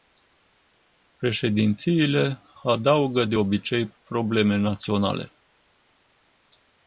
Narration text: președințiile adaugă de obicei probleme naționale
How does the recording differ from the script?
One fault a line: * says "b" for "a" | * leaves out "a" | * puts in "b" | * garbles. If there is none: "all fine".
all fine